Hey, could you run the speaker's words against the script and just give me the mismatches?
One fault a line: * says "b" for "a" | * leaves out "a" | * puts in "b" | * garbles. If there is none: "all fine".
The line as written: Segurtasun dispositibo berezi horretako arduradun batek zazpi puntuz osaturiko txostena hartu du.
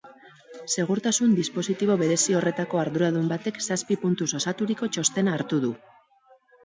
all fine